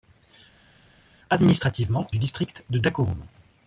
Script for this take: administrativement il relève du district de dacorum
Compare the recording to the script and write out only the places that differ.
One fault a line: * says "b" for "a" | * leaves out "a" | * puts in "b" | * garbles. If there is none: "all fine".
* leaves out "il relève"